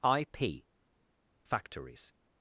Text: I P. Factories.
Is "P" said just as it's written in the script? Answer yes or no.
yes